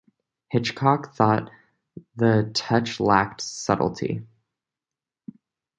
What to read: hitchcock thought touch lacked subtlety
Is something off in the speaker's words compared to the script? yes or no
yes